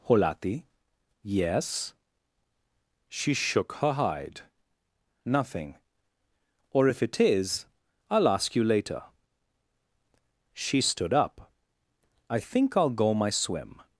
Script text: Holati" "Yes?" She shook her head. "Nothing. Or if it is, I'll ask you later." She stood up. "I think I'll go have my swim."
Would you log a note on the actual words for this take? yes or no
yes